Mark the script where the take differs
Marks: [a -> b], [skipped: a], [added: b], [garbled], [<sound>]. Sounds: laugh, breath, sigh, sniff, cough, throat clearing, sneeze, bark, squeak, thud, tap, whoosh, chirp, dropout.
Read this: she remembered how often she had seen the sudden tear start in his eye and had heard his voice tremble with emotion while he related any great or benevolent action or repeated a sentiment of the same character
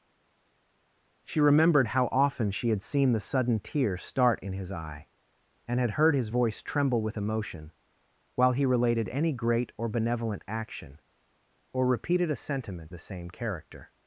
she remembered how often she had seen the sudden tear start in his eye and had heard his voice tremble with emotion while he related any great or benevolent action or repeated a sentiment [skipped: of] the same character